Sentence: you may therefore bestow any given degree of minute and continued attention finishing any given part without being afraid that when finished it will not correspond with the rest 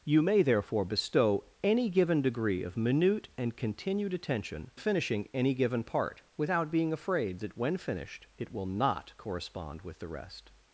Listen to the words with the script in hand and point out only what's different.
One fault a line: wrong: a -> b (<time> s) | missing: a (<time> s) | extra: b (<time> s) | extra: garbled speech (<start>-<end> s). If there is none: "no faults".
no faults